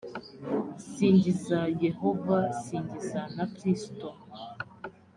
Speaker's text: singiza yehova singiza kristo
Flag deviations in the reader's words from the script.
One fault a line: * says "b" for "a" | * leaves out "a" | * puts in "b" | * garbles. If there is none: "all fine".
* puts in "na"